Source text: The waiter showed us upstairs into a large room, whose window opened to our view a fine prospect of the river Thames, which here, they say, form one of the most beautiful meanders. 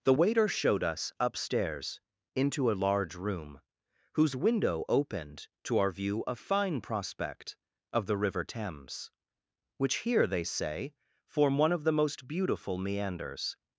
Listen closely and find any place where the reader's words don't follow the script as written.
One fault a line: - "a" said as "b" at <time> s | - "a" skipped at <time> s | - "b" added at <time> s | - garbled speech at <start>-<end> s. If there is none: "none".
none